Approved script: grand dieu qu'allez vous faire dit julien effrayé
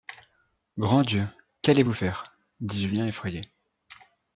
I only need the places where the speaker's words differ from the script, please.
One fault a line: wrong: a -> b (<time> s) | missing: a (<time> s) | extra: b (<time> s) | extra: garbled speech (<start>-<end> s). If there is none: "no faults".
no faults